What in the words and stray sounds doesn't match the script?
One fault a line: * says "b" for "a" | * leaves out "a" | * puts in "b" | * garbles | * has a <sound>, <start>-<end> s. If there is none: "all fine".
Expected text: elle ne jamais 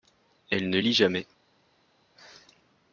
* puts in "lit"